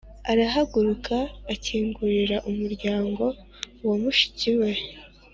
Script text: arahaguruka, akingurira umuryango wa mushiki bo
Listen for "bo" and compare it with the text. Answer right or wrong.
wrong